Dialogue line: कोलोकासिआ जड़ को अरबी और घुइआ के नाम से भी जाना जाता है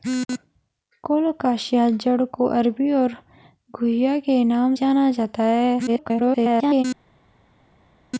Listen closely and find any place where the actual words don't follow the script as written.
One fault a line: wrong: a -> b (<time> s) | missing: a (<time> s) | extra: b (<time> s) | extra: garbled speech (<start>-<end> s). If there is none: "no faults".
missing: से भी (4.8 s)
extra: garbled speech (5.9-6.8 s)